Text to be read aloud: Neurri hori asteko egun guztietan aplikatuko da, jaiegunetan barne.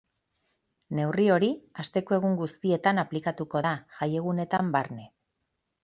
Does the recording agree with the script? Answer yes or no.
yes